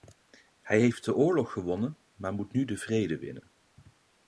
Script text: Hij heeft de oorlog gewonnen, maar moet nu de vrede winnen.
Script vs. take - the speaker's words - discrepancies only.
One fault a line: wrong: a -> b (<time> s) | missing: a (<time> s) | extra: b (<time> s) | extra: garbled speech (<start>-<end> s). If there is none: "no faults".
no faults